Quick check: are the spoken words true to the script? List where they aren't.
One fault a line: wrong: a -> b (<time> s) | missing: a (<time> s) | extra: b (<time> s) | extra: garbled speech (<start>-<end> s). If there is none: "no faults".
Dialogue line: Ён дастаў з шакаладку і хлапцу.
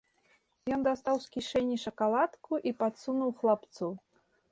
extra: кішэні (1.4 s)
extra: падсунуў (2.8 s)